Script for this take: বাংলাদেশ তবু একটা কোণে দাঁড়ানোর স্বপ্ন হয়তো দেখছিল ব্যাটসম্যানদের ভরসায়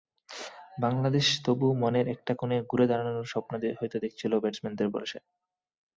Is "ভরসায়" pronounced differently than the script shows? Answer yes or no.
no